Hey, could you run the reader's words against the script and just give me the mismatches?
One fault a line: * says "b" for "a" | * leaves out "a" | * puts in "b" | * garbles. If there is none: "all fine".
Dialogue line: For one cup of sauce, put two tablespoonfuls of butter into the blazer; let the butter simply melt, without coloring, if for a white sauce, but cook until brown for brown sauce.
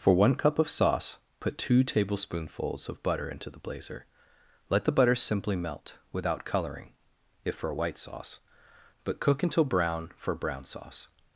all fine